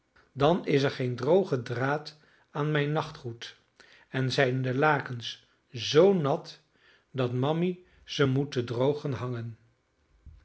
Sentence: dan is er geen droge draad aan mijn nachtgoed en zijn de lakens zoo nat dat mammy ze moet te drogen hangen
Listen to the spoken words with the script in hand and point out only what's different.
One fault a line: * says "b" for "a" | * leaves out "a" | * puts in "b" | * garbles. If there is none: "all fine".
all fine